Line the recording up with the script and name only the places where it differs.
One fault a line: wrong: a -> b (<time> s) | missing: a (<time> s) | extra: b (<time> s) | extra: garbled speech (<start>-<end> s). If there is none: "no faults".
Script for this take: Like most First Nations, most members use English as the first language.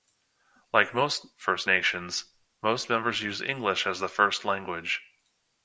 no faults